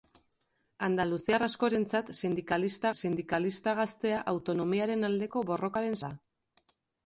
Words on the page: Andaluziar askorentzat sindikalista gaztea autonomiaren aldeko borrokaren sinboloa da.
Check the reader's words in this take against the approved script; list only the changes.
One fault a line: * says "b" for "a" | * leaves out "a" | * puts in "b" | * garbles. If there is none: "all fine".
* puts in "sindikalista"
* leaves out "sinboloa"